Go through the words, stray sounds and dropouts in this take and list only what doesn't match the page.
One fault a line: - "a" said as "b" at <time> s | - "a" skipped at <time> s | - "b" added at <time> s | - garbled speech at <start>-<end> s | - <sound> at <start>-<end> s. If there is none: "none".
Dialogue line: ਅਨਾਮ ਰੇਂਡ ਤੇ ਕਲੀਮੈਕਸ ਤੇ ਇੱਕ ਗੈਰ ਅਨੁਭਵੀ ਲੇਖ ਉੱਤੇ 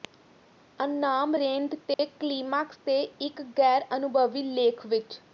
- dropout at 1.9-2.0 s
- "ਉੱਤੇ" said as "ਵਿੱਚ" at 4.9 s